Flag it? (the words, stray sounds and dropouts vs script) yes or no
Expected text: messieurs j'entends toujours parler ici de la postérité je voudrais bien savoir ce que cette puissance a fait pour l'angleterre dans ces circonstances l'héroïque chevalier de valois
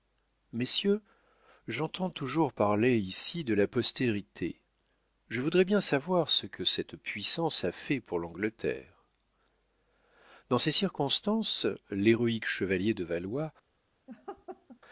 yes